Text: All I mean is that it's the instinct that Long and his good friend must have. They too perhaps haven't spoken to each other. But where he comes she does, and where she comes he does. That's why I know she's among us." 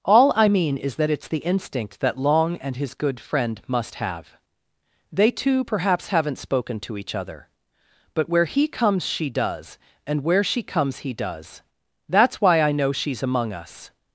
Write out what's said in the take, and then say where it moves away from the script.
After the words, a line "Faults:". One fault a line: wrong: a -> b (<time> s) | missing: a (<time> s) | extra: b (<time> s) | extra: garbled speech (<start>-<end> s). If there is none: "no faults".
All I mean is that it's the instinct that Long and his good friend must have. They too perhaps haven't spoken to each other. But where he comes she does, and where she comes he does. That's why I know she's among us."
Faults:
no faults